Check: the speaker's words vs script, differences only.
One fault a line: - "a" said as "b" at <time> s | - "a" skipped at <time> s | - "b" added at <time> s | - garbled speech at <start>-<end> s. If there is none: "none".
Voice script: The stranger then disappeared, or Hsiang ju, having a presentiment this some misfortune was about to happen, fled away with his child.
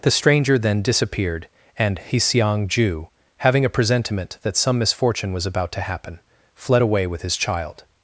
- "or" said as "and" at 1.8 s
- "this" said as "that" at 4.4 s